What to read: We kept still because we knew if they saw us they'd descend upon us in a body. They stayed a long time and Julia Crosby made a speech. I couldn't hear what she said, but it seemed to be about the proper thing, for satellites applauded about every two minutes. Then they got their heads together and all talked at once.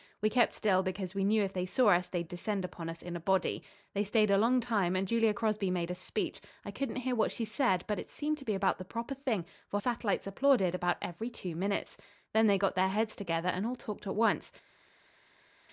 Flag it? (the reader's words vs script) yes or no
no